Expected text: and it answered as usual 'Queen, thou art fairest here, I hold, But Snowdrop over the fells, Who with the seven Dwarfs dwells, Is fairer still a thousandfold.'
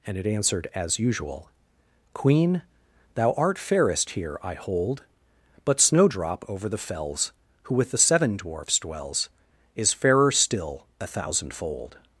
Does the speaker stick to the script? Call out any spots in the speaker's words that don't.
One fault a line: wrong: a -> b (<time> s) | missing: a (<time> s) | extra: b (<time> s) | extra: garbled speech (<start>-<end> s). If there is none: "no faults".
no faults